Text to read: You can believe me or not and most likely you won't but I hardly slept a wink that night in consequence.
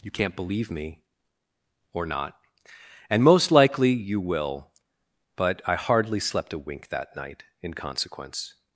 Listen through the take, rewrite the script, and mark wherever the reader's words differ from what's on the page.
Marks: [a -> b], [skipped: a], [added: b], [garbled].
You [can -> can't] believe me or not and most likely you [won't -> will] but I hardly slept a wink that night in consequence.